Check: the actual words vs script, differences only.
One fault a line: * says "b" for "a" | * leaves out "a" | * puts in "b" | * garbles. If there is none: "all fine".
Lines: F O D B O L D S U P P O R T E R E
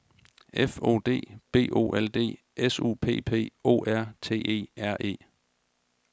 all fine